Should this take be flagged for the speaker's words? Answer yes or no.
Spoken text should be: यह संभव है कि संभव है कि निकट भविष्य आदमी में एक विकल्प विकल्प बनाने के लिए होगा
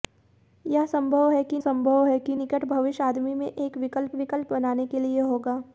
no